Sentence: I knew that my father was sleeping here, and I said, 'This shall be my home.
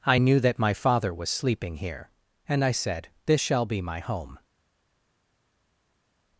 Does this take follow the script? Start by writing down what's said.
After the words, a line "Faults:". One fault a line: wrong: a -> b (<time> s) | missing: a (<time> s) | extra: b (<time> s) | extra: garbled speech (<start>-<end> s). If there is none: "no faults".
I knew that my father was sleeping here, and I said, 'This shall be my home.
Faults:
no faults